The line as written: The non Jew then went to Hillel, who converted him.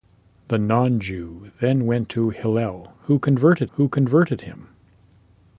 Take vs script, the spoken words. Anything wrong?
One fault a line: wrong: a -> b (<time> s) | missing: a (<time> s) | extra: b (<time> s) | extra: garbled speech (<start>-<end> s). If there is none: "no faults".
extra: who converted (3.7 s)